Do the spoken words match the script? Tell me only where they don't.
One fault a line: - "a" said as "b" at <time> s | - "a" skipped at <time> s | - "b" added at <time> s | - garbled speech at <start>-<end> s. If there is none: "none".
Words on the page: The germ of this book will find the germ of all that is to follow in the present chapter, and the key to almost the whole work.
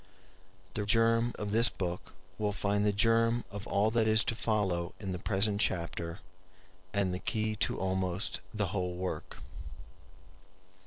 none